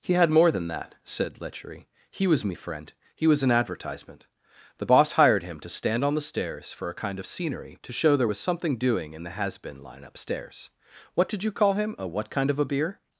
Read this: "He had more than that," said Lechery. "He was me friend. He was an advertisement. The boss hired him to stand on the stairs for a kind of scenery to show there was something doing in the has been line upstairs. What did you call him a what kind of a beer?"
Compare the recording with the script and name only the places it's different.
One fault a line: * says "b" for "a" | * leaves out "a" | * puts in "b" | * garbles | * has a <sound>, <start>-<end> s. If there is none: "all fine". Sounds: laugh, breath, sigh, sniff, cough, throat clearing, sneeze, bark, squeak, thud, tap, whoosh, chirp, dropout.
all fine